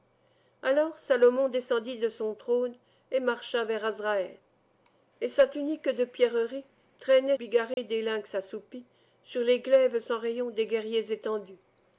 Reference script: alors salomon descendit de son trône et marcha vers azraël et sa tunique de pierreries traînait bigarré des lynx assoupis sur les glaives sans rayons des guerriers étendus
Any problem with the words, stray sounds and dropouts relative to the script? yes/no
yes